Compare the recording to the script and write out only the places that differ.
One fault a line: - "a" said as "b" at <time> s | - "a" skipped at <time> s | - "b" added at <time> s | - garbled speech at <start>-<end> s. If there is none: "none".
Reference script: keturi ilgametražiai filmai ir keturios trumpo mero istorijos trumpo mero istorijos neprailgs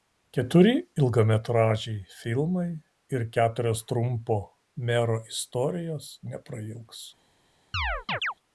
- "trumpo mero istorijos" skipped at 6.1 s